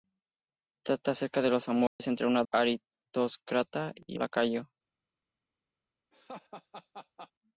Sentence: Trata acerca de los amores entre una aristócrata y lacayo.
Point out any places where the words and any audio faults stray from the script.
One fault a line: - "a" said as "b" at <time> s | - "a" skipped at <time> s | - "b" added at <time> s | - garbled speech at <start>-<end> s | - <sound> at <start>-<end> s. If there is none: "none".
- dropout at 1.9-2.0 s
- laugh at 6.1-7.3 s